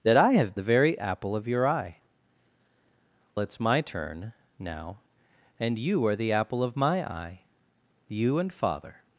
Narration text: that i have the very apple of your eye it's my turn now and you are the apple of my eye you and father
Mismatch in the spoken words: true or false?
false